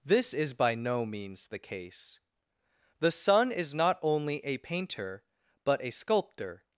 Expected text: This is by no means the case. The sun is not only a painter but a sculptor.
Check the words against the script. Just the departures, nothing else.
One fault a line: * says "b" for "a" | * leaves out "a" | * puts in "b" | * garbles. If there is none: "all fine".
all fine